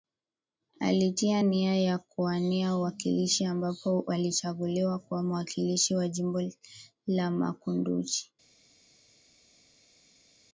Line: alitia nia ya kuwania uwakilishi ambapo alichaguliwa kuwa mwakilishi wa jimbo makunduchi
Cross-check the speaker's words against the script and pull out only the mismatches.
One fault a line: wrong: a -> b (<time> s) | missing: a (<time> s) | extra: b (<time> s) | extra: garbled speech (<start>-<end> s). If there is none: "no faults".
extra: la (7.1 s)